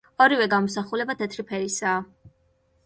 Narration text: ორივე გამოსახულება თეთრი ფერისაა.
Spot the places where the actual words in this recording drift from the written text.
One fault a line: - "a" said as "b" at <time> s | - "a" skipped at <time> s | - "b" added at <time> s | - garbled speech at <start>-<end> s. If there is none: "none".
none